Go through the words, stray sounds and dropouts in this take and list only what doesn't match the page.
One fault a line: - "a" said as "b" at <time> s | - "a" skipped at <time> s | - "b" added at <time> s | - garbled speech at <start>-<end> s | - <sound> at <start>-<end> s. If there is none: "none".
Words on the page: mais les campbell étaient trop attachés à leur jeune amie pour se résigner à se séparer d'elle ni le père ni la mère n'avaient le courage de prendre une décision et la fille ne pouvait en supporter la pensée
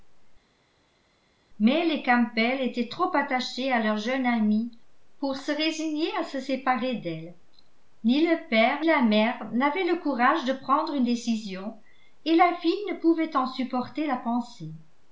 - "ni" skipped at 8.8 s